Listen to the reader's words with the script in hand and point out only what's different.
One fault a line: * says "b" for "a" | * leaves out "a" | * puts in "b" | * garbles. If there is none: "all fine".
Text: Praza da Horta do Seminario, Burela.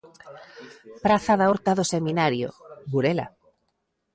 all fine